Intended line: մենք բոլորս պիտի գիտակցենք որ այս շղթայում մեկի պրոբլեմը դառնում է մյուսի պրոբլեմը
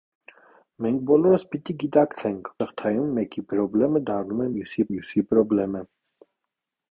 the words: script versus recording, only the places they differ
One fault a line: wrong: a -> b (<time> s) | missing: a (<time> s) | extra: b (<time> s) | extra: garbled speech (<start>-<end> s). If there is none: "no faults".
missing: որ այս (2.5 s)
extra: մյուսի (4.9 s)